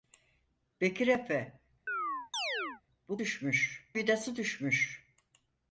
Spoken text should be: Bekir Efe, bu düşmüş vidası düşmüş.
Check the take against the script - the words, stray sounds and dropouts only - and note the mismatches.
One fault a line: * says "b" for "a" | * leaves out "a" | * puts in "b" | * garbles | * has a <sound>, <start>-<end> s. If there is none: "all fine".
* has a chirp, 1.9-2.8 s